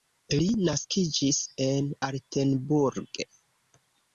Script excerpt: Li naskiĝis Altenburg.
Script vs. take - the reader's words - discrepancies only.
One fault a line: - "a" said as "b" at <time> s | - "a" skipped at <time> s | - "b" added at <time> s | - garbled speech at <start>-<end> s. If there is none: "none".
- "en" added at 1.7 s